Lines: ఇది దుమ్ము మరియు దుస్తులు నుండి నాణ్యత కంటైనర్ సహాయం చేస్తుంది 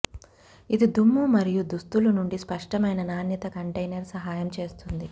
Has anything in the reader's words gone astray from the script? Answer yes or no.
yes